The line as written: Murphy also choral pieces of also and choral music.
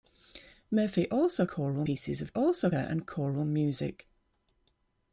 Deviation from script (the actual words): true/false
false